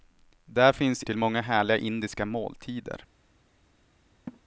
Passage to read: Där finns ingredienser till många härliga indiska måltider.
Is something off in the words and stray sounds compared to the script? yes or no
yes